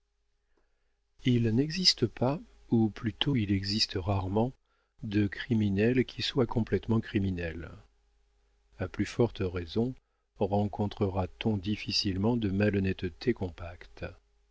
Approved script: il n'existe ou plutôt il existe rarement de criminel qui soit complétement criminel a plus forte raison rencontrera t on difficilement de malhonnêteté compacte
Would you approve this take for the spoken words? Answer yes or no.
no